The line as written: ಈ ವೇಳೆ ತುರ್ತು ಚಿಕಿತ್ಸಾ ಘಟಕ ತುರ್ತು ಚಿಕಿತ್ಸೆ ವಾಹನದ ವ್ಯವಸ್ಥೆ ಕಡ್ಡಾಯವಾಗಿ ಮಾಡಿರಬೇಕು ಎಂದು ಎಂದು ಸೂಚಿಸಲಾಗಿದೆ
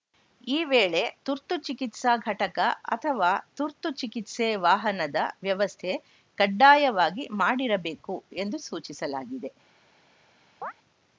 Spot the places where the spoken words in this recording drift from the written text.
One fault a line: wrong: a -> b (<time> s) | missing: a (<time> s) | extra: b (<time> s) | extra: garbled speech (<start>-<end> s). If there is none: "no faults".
extra: ಅಥವಾ (2.9 s)
missing: ಎಂದು (8.6 s)